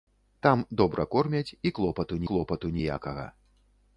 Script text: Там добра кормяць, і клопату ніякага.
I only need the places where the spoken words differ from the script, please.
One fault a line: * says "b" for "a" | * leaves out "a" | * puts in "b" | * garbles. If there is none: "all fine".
* puts in "клопату"